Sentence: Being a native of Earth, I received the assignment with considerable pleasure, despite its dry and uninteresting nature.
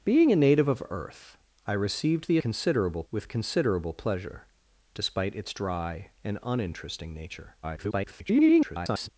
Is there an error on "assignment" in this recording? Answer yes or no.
yes